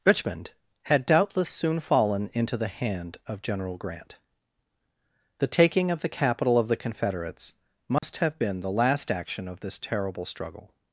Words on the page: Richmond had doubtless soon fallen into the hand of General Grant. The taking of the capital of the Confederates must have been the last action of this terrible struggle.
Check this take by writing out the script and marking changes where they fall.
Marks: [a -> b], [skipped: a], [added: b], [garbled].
Richmond had doubtless soon fallen into the hand of General Grant. The taking of the capital of the Confederates must have been the last action of this terrible struggle.